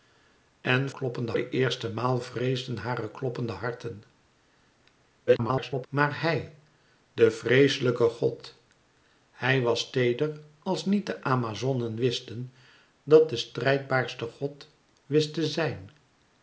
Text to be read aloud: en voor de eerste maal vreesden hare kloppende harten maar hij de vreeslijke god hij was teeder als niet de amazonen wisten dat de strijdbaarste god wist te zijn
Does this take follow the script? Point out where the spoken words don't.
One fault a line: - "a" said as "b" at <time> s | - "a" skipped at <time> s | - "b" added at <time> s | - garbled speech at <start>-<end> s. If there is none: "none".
- "voor" said as "kloppende" at 0.9 s
- garbled speech at 5.3-5.9 s